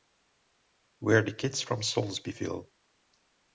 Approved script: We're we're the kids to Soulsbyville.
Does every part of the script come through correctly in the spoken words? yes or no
no